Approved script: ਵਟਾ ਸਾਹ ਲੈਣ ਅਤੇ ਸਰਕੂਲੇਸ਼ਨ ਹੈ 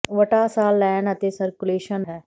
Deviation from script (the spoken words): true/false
false